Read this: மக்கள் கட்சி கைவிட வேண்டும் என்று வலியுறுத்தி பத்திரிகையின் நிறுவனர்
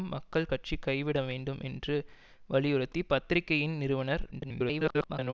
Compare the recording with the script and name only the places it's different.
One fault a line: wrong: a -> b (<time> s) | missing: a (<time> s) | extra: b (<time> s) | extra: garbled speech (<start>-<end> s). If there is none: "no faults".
extra: garbled speech (4.3-5.3 s)